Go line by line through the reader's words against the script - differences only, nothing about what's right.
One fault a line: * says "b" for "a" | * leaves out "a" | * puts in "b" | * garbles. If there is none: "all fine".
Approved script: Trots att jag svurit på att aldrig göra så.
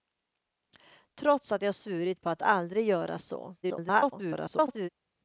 * garbles